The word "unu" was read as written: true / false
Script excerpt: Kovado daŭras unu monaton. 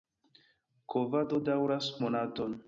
false